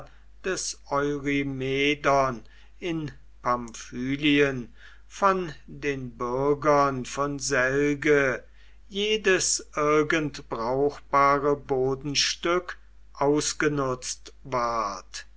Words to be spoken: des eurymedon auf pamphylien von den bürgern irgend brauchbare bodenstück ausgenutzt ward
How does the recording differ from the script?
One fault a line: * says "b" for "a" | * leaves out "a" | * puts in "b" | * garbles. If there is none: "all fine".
* says "in" for "auf"
* puts in "von selge jedes"